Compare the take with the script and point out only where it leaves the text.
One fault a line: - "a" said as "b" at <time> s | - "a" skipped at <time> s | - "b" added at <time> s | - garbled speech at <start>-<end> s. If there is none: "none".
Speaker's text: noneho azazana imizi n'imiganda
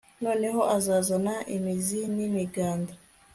none